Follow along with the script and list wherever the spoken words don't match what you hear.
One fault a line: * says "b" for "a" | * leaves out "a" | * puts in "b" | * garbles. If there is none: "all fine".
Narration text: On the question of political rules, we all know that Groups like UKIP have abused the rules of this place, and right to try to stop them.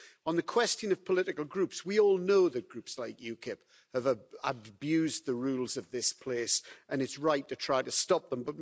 * says "groups" for "rules"
* puts in "it's"